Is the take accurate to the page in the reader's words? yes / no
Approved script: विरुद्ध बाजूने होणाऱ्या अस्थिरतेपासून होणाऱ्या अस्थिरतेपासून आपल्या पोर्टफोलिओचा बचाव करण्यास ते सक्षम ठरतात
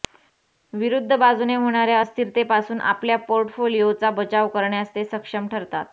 no